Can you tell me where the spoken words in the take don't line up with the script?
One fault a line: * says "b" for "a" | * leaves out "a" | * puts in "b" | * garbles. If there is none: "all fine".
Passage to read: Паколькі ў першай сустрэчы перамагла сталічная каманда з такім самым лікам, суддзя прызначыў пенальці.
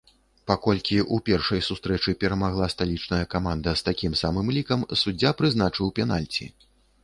all fine